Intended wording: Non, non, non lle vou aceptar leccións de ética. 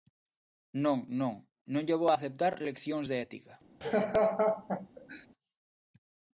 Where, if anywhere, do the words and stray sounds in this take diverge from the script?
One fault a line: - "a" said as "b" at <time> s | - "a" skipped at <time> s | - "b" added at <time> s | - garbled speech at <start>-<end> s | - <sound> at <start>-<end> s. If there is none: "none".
- laugh at 3.8-5.3 s